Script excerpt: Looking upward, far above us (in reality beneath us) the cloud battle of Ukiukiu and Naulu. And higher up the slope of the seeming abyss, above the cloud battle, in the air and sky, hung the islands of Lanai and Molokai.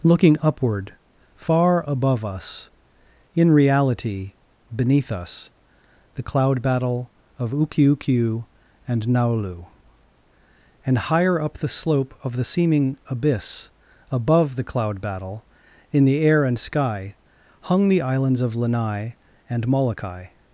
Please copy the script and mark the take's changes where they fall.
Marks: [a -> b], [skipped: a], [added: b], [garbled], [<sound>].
Looking upward, far above us (in reality beneath us) the cloud battle of Ukiukiu and Naulu. And higher up the slope of the seeming abyss, above the cloud battle, in the air and sky, hung the islands of Lanai and Molokai.